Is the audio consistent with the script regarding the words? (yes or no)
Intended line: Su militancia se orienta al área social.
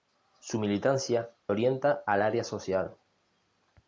no